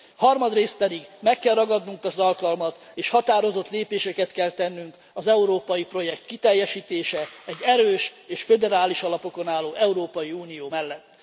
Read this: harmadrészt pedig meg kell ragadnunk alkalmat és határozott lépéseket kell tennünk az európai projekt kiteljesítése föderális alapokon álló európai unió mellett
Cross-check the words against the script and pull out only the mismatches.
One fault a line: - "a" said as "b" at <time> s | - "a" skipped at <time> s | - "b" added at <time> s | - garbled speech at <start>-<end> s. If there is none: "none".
- "az" added at 2.0 s
- "egy erős és" added at 7.4 s